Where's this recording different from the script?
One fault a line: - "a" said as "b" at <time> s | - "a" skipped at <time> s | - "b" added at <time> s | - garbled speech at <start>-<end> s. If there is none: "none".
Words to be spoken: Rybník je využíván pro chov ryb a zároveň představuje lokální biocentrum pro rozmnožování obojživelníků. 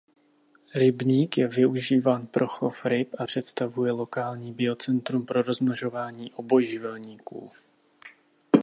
- "zároveň" skipped at 3.2 s